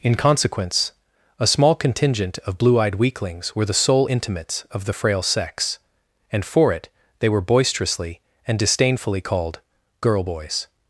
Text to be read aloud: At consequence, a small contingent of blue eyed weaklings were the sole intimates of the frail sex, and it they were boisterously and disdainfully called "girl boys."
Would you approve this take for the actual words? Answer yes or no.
no